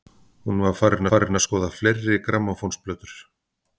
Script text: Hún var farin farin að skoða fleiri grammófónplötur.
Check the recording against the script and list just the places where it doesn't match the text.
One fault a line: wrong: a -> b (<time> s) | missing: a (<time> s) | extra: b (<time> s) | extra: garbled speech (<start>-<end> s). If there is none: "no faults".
no faults